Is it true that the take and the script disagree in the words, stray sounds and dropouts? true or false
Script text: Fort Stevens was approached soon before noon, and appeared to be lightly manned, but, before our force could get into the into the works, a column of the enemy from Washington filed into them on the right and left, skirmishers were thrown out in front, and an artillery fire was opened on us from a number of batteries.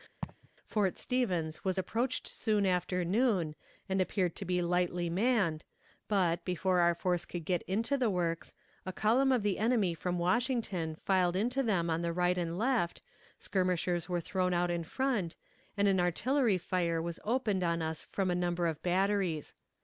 true